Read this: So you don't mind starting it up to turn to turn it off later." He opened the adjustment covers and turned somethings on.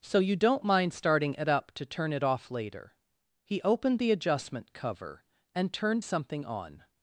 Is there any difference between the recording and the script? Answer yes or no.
yes